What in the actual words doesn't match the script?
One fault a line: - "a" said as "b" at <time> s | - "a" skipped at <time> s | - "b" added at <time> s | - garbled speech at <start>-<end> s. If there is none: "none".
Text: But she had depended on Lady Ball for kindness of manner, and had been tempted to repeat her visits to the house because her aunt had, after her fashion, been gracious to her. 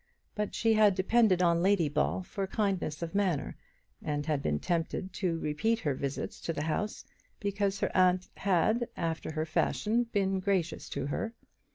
none